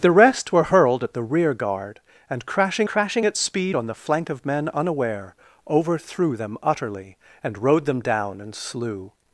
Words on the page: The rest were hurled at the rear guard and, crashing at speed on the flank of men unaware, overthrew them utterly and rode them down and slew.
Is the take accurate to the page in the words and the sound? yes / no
no